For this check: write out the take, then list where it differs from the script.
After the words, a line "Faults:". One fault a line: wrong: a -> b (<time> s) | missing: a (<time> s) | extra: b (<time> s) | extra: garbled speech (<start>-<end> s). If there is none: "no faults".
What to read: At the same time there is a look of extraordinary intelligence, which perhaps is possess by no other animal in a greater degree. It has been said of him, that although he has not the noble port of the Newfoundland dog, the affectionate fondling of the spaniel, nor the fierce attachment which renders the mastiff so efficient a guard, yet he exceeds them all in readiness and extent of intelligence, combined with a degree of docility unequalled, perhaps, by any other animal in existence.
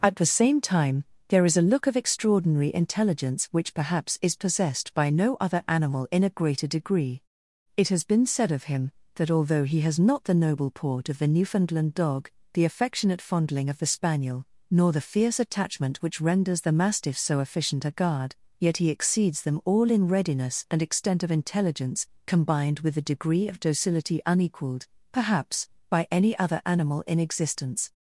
At the same time there is a look of extraordinary intelligence, which perhaps is possessed by no other animal in a greater degree. It has been said of him, that although he has not the noble port of the Newfoundland dog, the affectionate fondling of the spaniel, nor the fierce attachment which renders the mastiff so efficient a guard, yet he exceeds them all in readiness and extent of intelligence, combined with a degree of docility unequalled, perhaps, by any other animal in existence.
Faults:
wrong: possess -> possessed (4.3 s)